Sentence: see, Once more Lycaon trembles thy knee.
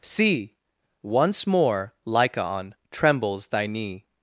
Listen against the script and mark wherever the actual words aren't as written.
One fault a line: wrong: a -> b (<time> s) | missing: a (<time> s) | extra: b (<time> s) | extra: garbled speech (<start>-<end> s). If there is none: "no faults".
no faults